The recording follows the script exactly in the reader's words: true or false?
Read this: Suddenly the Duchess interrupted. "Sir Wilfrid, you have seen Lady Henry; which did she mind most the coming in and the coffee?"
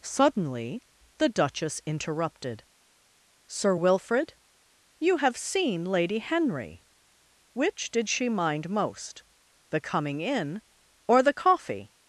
false